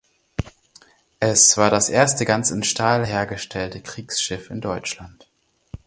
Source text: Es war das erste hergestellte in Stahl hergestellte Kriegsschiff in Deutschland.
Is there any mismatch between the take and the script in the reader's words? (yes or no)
yes